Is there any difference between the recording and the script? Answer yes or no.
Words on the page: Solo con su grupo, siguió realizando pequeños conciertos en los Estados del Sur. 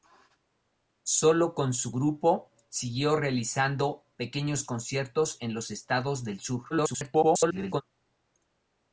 yes